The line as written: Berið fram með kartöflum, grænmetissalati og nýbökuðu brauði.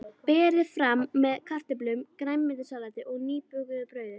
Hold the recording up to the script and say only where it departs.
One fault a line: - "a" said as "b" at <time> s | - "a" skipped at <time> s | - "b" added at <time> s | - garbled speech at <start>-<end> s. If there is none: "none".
none